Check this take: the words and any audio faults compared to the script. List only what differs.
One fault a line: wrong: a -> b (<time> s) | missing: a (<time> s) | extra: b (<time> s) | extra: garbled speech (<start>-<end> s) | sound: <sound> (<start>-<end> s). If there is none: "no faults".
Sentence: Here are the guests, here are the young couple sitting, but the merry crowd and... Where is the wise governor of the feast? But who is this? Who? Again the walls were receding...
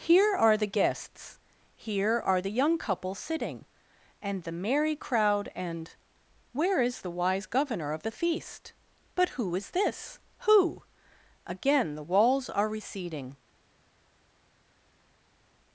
wrong: but -> and (4.2 s)
wrong: were -> are (12.5 s)